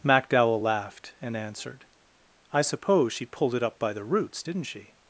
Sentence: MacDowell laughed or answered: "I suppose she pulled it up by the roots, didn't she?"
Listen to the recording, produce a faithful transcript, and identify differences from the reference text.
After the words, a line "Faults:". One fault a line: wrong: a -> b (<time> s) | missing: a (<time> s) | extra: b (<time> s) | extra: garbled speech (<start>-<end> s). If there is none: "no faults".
MacDowell laughed and answered: "I suppose she pulled it up by the roots, didn't she?"
Faults:
wrong: or -> and (1.2 s)